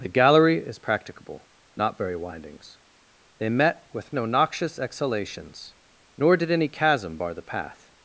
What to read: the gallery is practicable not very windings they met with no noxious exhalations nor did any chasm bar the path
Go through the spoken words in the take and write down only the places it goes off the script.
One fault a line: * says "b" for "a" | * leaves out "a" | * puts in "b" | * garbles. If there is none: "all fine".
all fine